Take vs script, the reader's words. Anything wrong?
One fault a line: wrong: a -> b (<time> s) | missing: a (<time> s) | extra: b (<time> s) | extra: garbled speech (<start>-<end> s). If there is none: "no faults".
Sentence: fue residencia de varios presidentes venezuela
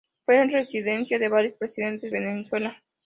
no faults